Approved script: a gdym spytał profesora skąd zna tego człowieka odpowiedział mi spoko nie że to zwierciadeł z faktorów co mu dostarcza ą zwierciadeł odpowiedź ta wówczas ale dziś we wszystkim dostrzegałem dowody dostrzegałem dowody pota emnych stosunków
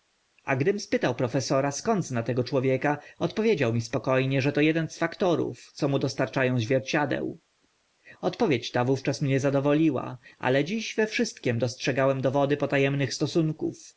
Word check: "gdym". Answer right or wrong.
right